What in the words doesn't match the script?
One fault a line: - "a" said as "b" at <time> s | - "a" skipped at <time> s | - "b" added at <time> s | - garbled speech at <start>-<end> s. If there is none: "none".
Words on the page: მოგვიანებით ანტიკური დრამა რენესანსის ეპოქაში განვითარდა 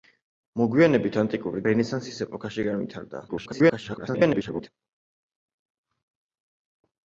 - "დრამა" skipped at 1.6 s
- garbled speech at 3.3-4.7 s